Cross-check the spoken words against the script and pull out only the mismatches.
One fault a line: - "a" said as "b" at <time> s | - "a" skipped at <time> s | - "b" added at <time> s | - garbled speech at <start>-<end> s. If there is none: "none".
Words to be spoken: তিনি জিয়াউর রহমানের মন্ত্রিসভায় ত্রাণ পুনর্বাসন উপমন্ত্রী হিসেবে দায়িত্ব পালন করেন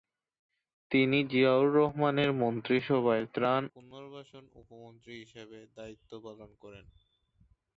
none